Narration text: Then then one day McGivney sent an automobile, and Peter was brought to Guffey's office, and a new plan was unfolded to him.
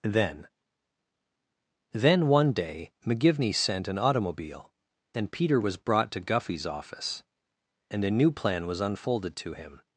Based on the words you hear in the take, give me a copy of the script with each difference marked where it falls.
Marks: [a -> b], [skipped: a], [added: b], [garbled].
Then then one day McGivney sent an automobile, and Peter was brought to Guffey's office, and a new plan was unfolded to him.